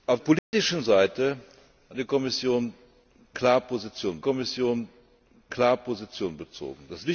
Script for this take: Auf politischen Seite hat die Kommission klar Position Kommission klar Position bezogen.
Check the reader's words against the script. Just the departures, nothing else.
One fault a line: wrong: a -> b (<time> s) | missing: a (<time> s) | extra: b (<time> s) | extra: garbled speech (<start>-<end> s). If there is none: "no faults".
no faults